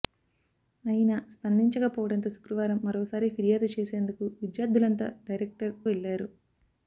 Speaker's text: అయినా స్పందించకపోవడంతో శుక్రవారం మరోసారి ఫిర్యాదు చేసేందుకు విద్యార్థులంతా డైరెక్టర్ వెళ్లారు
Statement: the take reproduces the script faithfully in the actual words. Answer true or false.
true